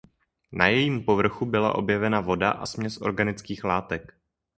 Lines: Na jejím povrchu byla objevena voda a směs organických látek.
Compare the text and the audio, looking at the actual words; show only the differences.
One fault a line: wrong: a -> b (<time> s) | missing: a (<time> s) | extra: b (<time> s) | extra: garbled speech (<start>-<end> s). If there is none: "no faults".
no faults